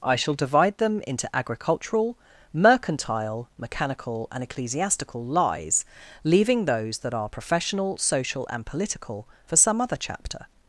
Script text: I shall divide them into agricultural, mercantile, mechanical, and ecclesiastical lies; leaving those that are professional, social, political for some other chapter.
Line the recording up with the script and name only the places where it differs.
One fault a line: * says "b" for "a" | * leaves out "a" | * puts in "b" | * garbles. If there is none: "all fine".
* puts in "and"